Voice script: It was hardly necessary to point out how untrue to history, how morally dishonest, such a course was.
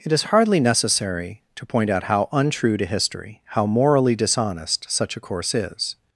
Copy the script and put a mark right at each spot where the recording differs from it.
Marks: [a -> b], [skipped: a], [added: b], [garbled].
It [was -> is] hardly necessary to point out how untrue to history, how morally dishonest, such a course [was. -> is]